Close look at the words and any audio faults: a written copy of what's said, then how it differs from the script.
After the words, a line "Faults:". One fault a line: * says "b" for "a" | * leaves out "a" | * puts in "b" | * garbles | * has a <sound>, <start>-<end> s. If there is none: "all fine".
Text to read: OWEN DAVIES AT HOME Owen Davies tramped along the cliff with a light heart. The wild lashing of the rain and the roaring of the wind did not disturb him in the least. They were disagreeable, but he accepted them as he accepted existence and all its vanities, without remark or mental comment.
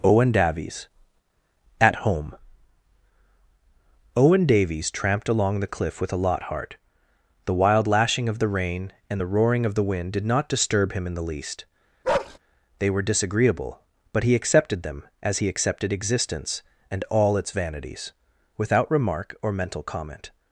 OWEN DAVIES AT HOME Owen Davies tramped along the cliff with a lot heart. The wild lashing of the rain and the roaring of the wind did not disturb him in the least. They were disagreeable, but he accepted them as he accepted existence and all its vanities, without remark or mental comment.
Faults:
* says "lot" for "light"
* has a bark, 12.0-12.4 s